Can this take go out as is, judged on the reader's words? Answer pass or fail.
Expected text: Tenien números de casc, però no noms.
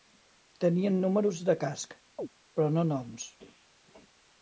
pass